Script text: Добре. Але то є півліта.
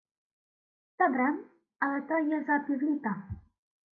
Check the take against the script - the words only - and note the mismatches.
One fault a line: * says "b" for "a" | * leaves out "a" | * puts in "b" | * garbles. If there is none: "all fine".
* puts in "за"